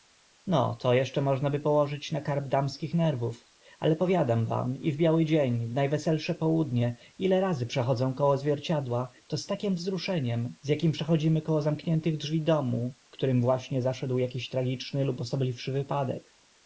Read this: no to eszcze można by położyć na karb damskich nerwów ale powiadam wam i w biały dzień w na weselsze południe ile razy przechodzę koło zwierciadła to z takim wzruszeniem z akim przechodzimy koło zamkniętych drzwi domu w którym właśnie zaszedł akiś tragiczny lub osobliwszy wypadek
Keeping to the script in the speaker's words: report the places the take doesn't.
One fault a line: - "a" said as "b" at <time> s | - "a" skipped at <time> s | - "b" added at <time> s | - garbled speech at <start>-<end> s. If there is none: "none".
none